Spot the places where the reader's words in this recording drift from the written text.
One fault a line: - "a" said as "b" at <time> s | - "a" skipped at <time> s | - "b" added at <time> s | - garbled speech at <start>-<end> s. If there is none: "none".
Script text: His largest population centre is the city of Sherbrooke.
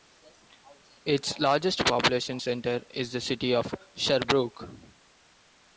- "His" said as "Its" at 1.1 s